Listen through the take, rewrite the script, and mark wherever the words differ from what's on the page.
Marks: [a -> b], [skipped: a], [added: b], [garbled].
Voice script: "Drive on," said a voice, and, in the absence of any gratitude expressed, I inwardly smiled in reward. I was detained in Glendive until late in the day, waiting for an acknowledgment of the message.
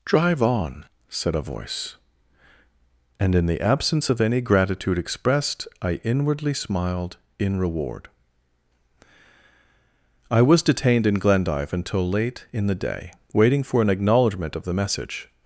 "Drive on," said a voice, and, in the absence of any gratitude expressed, I inwardly smiled in reward. I was detained in Glendive until late in the day, waiting for an acknowledgment of the message.